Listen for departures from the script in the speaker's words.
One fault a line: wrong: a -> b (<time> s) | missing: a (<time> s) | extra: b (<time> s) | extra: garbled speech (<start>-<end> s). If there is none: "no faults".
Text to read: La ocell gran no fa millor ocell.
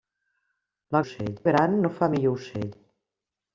no faults